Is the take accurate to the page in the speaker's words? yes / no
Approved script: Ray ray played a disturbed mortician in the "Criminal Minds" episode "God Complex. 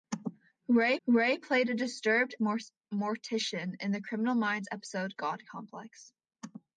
yes